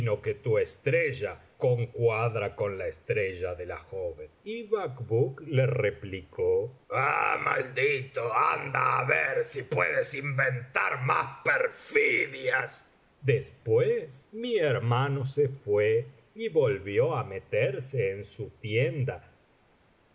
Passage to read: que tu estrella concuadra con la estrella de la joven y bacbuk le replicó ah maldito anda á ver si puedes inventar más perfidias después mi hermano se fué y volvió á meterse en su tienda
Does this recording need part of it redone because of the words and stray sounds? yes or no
no